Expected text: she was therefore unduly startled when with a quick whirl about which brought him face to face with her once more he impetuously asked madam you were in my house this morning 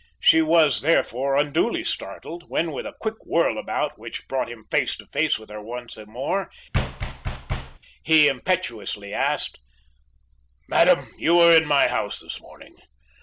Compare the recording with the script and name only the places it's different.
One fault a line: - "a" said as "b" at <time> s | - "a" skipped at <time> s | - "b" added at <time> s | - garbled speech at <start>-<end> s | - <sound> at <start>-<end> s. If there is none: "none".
- thud at 6.7-7.8 s